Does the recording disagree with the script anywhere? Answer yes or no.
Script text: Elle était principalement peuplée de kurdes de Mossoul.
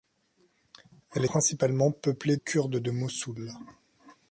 yes